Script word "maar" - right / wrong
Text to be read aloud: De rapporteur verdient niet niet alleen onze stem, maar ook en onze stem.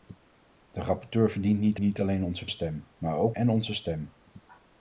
right